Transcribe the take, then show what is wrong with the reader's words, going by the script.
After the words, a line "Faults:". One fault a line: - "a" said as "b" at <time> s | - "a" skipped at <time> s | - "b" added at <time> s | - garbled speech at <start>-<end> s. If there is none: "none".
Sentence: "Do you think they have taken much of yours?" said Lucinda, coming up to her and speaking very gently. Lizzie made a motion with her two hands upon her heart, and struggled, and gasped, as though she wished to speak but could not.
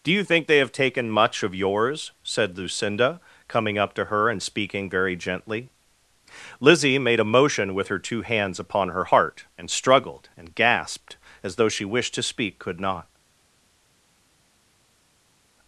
"Do you think they have taken much of yours?" said Lucinda, coming up to her and speaking very gently. Lizzie made a motion with her two hands upon her heart, and struggled, and gasped, as though she wished to speak could not.
Faults:
- "but" skipped at 12.6 s